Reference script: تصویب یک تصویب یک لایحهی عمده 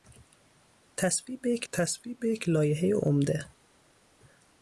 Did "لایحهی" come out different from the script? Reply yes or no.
no